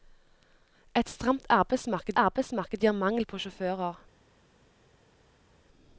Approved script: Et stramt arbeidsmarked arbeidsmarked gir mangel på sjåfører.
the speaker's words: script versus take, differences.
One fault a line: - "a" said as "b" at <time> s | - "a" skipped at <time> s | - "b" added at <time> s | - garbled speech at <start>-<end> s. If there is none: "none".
none